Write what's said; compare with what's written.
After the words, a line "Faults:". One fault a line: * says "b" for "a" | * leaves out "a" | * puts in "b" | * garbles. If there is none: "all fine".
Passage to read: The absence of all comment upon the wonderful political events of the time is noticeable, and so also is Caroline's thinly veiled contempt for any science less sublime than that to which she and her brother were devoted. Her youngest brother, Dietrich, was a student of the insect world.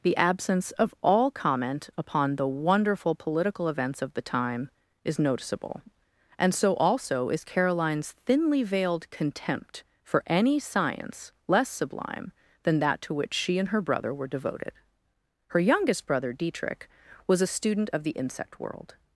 The absence of all comment upon the wonderful political events of the time is noticeable, and so also is Caroline's thinly veiled contempt for any science less sublime than that to which she and her brother were devoted. Her youngest brother, Dietrich, was a student of the insect world.
Faults:
all fine